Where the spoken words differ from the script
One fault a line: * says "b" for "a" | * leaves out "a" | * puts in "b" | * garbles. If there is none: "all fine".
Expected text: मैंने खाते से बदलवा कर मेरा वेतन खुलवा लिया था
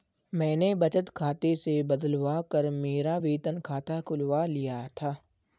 * puts in "बचत"
* puts in "खाता"